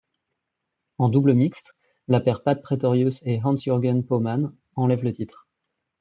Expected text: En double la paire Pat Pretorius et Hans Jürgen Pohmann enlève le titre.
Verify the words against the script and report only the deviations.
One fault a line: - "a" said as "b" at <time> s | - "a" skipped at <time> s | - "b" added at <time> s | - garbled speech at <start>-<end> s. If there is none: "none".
- "mixte" added at 1.4 s